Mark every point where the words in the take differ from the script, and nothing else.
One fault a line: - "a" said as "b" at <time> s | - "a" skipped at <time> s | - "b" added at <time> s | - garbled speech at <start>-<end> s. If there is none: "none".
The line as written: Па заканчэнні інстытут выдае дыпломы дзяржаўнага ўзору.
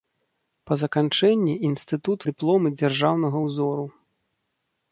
- "выдае" skipped at 2.2 s